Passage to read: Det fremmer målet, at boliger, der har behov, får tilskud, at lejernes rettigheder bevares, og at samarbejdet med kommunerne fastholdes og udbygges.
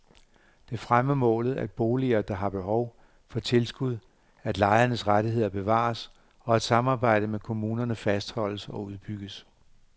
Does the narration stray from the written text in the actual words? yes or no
no